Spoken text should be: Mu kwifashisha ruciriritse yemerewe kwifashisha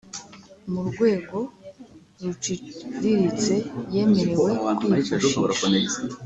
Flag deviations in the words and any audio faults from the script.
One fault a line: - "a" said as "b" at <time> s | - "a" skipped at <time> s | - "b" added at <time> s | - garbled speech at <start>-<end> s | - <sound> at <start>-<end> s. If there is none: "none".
- "kwifashisha" said as "rwego" at 0.9 s